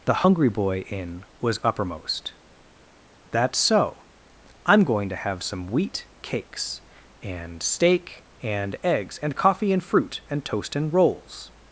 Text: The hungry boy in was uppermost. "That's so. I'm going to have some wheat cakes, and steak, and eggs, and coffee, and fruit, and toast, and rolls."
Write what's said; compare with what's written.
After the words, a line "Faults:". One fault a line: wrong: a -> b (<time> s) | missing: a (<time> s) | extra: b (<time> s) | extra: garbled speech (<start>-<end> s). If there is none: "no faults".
The hungry boy in was uppermost. "That's so. I'm going to have some wheat cakes, and steak, and eggs, and coffee, and fruit, and toast, and rolls."
Faults:
no faults